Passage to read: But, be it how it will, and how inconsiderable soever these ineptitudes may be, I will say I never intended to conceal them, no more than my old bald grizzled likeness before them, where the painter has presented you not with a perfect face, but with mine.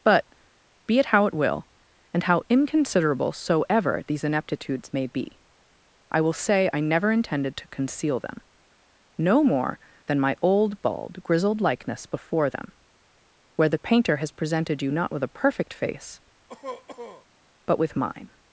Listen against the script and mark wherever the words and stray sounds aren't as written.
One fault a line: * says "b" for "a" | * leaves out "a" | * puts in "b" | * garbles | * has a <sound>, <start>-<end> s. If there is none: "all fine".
* has a cough, 16.5-17.3 s